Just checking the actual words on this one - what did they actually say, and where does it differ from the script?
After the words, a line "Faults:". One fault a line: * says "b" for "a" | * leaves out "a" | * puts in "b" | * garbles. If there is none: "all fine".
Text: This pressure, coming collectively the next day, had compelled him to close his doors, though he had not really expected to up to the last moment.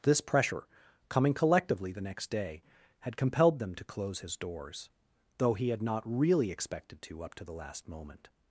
This pressure, coming collectively the next day, had compelled them to close his doors, though he had not really expected to up to the last moment.
Faults:
* says "them" for "him"